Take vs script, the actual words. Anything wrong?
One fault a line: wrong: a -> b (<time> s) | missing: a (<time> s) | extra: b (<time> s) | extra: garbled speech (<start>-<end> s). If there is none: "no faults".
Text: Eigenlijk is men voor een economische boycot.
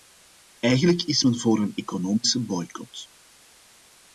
no faults